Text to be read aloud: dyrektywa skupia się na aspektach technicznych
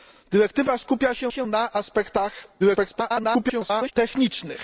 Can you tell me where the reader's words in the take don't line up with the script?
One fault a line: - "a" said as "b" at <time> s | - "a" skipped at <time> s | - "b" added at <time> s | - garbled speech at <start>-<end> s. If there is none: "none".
- "się" added at 1.3 s
- garbled speech at 2.6-3.9 s